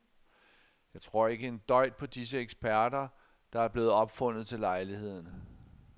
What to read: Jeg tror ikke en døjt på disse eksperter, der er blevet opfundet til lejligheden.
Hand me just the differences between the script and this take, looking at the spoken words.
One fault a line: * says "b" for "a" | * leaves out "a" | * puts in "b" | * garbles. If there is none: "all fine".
all fine